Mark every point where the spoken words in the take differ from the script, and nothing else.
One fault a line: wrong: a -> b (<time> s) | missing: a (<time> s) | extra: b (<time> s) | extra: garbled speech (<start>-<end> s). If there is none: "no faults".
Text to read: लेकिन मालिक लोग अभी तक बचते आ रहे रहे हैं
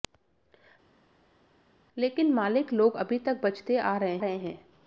no faults